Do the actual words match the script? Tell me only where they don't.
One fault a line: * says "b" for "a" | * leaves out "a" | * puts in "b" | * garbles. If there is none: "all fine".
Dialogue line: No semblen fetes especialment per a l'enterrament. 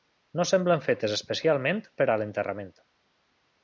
all fine